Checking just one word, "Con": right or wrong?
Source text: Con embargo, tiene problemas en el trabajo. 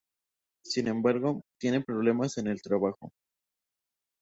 wrong